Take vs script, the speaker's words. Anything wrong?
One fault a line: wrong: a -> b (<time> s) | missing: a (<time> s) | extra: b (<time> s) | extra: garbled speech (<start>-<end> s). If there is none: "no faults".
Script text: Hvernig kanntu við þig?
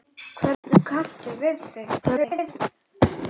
extra: garbled speech (2.0-2.6 s)